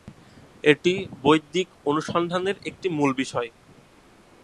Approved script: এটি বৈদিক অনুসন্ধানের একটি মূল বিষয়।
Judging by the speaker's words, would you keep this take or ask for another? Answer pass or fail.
pass